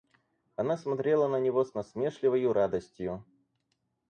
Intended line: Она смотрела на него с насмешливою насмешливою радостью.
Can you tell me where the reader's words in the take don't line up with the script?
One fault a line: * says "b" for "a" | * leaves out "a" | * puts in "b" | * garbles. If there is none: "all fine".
* leaves out "насмешливою"